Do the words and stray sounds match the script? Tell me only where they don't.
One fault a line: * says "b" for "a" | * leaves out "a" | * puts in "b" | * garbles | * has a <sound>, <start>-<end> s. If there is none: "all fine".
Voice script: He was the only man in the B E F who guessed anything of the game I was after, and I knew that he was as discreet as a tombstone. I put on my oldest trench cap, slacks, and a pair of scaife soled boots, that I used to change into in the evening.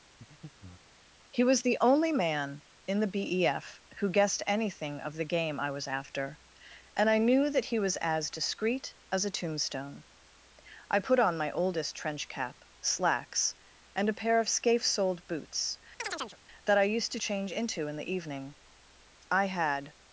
* has a breath, 0.2-1.0 s
* has a chirp, 16.0-16.4 s
* puts in "I had"